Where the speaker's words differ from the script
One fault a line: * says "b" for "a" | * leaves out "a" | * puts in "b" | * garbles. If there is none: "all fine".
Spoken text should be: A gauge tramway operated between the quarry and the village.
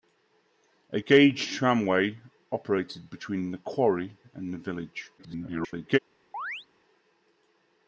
* garbles